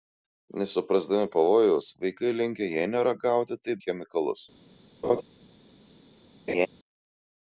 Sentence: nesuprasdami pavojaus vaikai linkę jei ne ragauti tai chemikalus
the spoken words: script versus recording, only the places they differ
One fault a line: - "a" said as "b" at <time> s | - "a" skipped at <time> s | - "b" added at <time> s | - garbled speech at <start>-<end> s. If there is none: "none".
none